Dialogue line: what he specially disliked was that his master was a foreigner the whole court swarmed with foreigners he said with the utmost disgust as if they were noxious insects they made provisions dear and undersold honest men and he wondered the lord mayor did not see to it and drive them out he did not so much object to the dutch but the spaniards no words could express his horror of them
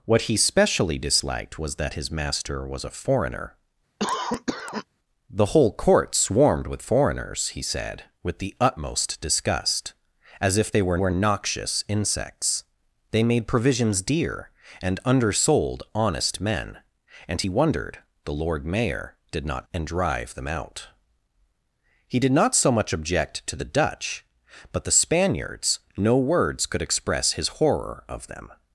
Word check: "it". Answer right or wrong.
wrong